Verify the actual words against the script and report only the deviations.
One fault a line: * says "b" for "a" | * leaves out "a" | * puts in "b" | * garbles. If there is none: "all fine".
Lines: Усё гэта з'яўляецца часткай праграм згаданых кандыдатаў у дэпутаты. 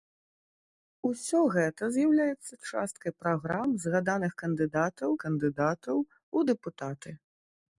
* puts in "кандыдатаў"